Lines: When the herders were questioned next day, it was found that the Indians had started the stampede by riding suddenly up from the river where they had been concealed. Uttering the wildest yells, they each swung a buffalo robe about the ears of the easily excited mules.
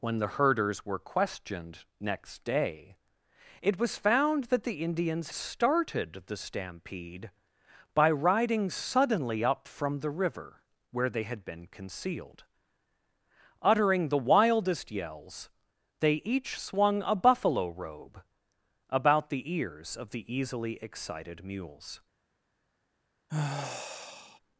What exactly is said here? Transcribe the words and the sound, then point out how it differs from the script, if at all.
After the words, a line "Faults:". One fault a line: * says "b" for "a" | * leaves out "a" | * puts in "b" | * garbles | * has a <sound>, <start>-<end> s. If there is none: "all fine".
When the herders were questioned next day, it was found that the Indians started the stampede by riding suddenly up from the river where they had been concealed. Uttering the wildest yells, they each swung a buffalo robe about the ears of the easily excited mules.
Faults:
* leaves out "had"
* has a sigh, 23.3-24.4 s